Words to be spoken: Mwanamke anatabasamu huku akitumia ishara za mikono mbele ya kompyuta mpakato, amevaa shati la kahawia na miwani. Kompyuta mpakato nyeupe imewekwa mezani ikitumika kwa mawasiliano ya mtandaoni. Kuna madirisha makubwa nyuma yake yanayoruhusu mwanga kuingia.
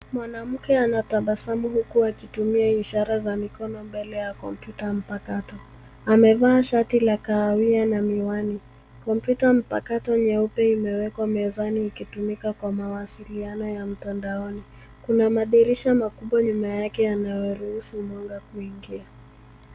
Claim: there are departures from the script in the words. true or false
false